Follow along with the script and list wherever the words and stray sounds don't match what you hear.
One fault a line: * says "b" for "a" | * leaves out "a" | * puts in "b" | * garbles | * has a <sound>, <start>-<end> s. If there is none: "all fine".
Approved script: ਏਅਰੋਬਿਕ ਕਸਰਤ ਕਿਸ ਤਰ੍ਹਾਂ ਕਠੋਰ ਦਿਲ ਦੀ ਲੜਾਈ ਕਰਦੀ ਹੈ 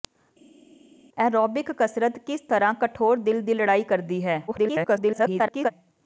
* garbles